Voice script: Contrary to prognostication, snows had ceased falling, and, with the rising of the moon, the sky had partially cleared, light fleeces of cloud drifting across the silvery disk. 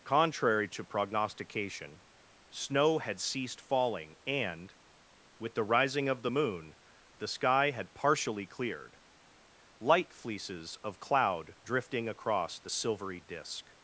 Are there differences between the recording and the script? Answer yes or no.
yes